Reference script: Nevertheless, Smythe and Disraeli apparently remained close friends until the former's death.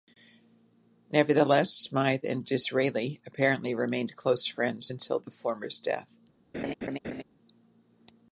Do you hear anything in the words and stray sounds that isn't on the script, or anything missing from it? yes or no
yes